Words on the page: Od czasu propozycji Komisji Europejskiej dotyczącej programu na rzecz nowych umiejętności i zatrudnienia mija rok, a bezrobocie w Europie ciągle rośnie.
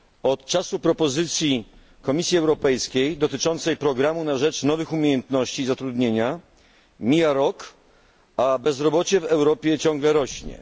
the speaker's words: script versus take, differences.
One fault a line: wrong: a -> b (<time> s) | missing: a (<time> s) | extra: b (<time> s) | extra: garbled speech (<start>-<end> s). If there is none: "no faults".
no faults